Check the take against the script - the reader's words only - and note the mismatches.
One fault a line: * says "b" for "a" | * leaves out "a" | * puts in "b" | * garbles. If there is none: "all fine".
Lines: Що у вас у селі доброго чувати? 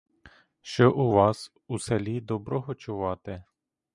all fine